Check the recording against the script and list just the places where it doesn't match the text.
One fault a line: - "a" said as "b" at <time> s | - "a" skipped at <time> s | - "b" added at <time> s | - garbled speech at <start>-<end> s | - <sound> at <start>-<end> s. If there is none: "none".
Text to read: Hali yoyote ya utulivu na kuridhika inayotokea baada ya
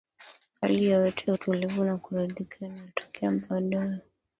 none